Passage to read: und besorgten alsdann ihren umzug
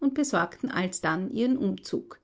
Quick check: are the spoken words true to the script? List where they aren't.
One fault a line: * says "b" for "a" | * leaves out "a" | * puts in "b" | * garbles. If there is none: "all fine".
all fine